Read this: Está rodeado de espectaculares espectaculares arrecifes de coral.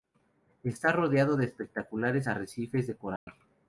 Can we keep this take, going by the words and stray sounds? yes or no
no